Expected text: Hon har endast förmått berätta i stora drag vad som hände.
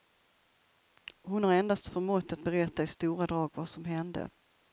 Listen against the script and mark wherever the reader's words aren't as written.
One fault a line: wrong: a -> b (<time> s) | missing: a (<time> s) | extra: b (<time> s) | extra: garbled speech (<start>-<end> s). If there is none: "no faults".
extra: att (2.3 s)